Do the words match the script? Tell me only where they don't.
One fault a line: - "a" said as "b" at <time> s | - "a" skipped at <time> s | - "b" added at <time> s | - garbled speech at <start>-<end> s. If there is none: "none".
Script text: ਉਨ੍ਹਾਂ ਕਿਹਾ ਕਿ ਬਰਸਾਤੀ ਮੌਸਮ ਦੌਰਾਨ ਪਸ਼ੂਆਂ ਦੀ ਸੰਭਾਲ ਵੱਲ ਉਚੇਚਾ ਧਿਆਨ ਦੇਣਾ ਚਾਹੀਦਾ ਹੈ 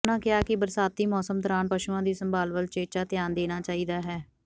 none